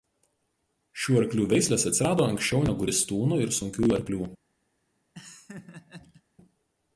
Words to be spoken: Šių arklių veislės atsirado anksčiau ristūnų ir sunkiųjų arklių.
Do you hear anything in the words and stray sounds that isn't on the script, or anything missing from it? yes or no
yes